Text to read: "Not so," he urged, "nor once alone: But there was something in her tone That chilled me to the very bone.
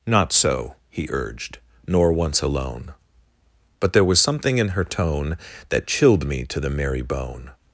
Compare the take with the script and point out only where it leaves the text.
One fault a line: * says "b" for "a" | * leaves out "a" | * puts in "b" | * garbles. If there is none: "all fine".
* says "merry" for "very"